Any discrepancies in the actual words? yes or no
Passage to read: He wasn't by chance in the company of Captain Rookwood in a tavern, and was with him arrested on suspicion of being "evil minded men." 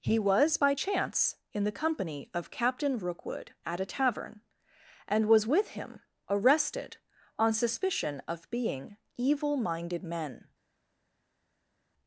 yes